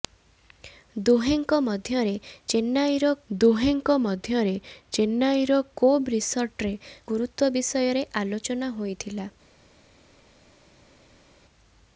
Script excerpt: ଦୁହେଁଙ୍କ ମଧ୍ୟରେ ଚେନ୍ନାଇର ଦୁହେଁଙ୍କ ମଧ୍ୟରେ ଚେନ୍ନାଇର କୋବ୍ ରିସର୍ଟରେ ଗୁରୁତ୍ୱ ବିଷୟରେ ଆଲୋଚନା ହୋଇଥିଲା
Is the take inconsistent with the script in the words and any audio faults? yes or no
no